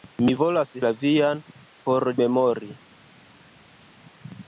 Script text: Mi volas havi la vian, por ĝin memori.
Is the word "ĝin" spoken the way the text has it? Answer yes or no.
no